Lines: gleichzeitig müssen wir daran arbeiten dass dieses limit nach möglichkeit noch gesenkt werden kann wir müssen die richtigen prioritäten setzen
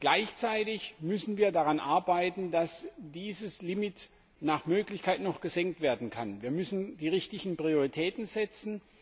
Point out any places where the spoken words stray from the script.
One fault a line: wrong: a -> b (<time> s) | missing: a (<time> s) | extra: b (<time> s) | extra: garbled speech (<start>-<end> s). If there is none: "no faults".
no faults